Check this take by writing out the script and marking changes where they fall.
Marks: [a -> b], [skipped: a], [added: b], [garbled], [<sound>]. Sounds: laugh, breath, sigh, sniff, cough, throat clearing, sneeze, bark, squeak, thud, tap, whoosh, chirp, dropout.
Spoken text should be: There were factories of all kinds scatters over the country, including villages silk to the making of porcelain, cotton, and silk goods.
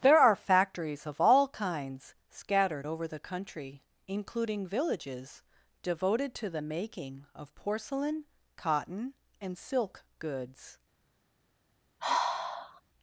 There [were -> are] factories of all kinds [scatters -> scattered] over the country, including villages [silk -> devoted] to the making of porcelain, cotton, and silk goods. [sigh]